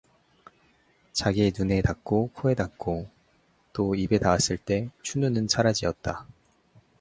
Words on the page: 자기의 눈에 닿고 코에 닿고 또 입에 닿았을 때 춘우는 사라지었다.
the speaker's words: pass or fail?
pass